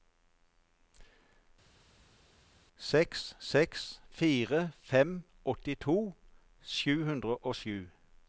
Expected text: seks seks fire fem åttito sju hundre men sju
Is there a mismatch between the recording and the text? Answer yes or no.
yes